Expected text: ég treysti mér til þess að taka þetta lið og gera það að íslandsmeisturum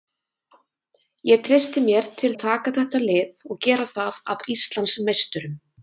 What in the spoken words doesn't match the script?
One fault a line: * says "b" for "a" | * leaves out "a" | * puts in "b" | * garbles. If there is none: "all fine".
* leaves out "þess"